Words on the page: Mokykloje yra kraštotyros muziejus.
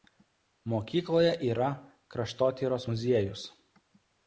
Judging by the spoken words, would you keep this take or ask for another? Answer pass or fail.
pass